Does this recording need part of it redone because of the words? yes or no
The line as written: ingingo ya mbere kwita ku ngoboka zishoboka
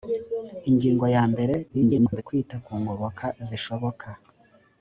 yes